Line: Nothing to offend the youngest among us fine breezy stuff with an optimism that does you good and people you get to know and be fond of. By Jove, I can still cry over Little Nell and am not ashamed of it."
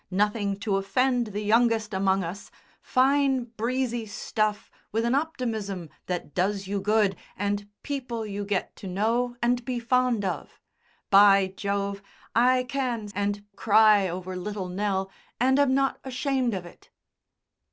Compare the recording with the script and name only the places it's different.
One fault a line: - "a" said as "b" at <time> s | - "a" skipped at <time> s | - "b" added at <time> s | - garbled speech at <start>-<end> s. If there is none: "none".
- "still" said as "and" at 13.1 s